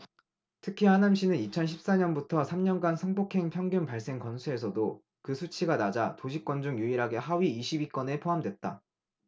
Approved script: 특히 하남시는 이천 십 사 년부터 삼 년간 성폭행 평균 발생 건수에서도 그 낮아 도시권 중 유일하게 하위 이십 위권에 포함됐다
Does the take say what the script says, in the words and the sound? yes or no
no